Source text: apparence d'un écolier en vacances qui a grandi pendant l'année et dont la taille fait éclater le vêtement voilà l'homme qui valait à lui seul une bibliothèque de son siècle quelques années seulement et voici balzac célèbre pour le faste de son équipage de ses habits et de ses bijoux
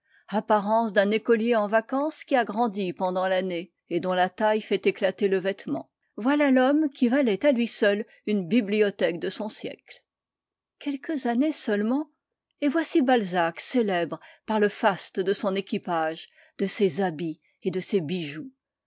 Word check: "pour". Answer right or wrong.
wrong